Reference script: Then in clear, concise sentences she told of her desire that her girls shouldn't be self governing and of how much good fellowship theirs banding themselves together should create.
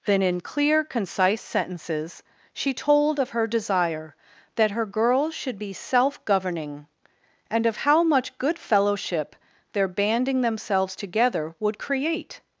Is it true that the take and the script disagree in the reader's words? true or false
true